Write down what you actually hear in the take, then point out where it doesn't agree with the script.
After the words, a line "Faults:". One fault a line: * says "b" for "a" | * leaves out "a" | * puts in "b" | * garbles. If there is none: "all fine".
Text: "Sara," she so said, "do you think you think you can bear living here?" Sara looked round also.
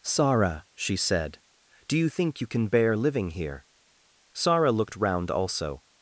"Sara," she said, "do you think you can bear living here?" Sara looked round also.
Faults:
* leaves out "so"
* leaves out "think you"